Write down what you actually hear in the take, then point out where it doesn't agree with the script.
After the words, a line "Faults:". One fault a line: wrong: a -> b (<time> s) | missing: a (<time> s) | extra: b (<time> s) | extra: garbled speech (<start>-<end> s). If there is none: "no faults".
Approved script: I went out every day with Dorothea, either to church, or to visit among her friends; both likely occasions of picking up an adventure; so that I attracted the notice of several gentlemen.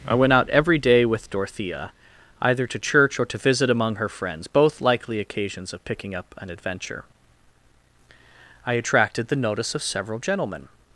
I went out every day with Dorothea, either to church, or to visit among her friends; both likely occasions of picking up an adventure; I attracted the notice of several gentlemen.
Faults:
missing: so that (7.0 s)